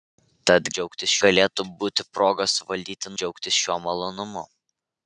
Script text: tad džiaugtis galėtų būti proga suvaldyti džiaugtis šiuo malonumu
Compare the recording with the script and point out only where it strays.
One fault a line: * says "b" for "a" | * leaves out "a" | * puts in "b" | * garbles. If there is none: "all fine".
all fine